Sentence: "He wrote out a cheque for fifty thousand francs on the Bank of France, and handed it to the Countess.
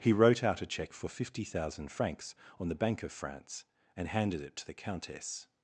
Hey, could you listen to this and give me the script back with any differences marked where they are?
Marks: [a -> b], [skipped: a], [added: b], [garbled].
"He wrote out a cheque for fifty thousand francs on the Bank of France, and handed it to the Countess.